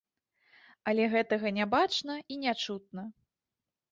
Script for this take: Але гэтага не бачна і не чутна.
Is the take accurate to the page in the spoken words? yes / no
yes